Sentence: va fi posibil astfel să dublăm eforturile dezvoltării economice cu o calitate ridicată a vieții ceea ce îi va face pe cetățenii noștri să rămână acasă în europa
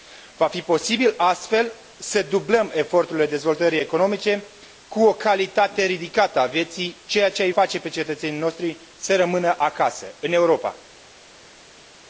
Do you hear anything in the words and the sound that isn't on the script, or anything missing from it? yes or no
yes